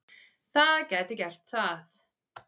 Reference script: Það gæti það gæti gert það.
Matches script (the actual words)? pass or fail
fail